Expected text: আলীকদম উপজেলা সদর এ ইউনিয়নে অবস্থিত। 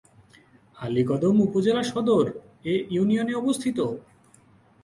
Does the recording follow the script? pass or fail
pass